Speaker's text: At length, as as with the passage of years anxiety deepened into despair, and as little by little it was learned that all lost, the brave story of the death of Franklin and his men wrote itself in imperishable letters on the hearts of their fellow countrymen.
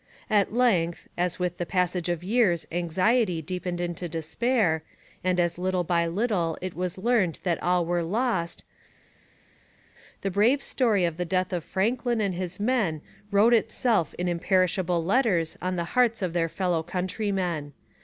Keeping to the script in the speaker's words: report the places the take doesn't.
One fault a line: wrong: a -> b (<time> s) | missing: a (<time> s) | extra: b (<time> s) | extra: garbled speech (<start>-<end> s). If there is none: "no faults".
missing: as (1.4 s)
extra: were (7.8 s)